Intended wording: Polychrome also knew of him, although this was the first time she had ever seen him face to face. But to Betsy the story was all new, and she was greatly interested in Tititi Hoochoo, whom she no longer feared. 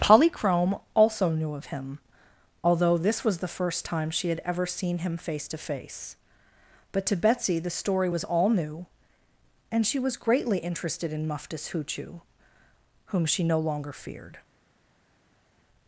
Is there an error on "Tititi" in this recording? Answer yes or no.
yes